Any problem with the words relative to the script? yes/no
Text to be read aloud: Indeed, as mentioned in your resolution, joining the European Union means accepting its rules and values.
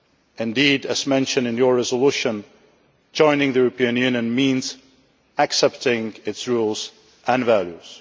no